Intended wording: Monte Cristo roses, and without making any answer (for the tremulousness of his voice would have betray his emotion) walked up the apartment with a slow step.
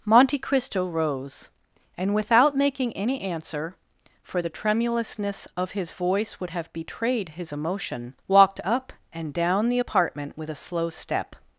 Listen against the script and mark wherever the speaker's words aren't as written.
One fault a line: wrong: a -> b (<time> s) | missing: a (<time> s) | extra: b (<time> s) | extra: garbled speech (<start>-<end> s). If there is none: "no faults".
wrong: roses -> rose (0.9 s)
wrong: betray -> betrayed (6.7 s)
extra: and down (9.1 s)